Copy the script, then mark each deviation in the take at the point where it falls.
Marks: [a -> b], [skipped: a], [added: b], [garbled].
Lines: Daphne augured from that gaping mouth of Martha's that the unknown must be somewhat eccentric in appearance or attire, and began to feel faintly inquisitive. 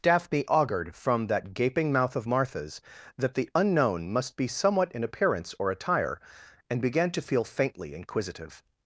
Daphne augured from that gaping mouth of Martha's that the unknown must be somewhat [skipped: eccentric] in appearance or attire, and began to feel faintly inquisitive.